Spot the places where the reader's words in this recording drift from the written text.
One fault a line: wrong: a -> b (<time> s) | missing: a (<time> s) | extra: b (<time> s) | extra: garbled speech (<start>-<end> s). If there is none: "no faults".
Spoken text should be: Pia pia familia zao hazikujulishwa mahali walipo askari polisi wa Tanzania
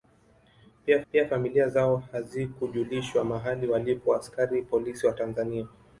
no faults